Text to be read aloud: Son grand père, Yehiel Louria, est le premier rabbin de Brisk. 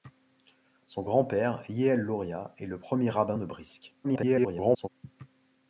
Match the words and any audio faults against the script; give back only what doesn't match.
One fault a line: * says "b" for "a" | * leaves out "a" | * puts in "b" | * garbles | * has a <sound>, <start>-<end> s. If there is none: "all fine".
* garbles